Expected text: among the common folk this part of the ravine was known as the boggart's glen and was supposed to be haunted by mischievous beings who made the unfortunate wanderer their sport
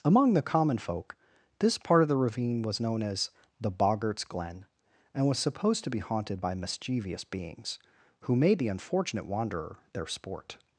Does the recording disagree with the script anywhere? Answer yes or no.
no